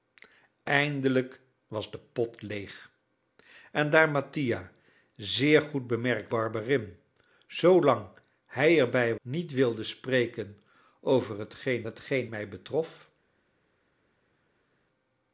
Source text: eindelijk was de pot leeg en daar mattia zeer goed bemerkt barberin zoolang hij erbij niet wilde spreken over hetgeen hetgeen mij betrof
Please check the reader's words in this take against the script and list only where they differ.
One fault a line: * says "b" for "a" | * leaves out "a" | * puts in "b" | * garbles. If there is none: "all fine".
all fine